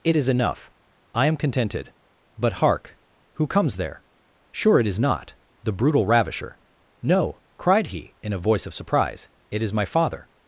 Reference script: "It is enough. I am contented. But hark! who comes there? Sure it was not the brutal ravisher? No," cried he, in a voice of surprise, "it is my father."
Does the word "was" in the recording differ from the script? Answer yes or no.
yes